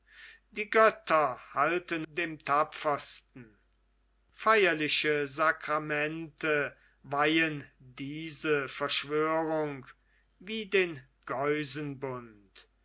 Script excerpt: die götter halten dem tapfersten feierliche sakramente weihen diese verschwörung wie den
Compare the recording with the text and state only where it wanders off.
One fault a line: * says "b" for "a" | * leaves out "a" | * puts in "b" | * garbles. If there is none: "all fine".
all fine